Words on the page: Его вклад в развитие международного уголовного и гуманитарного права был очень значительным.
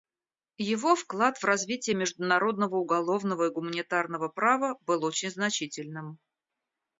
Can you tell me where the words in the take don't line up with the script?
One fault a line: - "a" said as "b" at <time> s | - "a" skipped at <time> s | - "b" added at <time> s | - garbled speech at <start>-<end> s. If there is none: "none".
none